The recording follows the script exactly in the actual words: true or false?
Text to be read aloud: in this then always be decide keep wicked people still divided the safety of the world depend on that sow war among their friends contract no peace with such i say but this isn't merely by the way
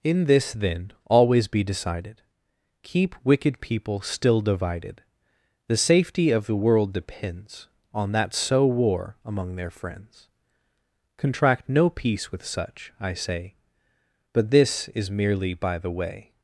false